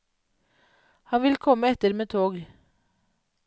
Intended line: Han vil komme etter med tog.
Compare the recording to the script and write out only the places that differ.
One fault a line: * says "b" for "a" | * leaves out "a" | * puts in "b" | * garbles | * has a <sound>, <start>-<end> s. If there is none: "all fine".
all fine